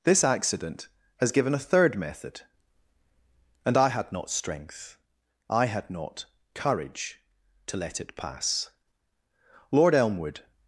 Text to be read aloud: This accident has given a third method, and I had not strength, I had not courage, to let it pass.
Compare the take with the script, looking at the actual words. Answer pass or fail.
fail